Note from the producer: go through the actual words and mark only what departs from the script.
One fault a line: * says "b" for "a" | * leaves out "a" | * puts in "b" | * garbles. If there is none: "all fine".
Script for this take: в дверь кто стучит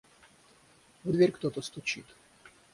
* puts in "то"